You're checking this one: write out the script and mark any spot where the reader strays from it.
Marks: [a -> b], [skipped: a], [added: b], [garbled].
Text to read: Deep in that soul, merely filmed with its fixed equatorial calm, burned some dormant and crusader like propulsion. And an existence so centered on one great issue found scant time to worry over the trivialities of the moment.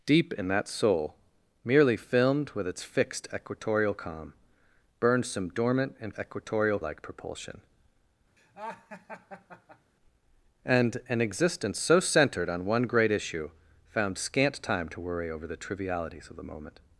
Deep in that soul, merely filmed with its fixed equatorial calm, burned some dormant and [crusader -> equatorial] like propulsion. And an existence so centered on one great issue found scant time to worry over the trivialities of the moment.